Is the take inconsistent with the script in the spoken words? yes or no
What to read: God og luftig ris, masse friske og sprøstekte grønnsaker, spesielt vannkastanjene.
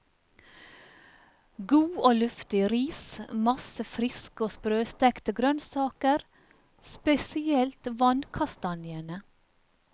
no